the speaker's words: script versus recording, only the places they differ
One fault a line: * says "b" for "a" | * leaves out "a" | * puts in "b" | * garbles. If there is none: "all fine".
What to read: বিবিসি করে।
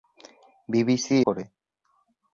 all fine